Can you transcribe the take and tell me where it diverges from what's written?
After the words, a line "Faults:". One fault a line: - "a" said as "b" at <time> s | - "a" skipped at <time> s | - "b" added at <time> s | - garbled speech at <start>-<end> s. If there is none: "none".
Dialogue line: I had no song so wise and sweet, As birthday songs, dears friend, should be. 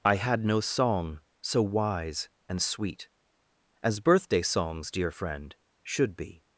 I had no song so wise and sweet, As birthday songs, dear friend, should be.
Faults:
- "dears" said as "dear" at 4.9 s